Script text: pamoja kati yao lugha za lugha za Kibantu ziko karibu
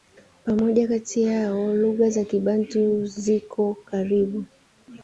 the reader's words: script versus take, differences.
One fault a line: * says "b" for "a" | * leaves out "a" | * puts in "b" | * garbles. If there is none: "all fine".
* leaves out "lugha za"